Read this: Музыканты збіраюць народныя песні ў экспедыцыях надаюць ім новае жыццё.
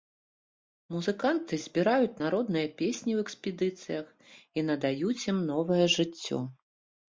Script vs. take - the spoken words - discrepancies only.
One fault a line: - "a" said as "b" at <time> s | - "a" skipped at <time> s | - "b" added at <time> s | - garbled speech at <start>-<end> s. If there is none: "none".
- "і" added at 4.6 s